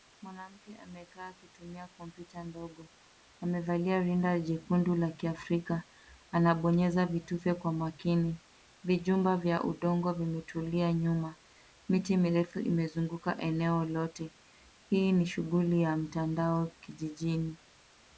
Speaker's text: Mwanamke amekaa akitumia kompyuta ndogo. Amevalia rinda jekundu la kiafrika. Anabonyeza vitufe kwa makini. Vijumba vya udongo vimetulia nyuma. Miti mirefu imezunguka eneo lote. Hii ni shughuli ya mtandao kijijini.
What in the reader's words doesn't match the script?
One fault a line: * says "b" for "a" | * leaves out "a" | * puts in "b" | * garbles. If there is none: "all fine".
all fine